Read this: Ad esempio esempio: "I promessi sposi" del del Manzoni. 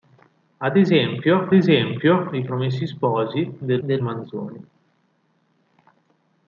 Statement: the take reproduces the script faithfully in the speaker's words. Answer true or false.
true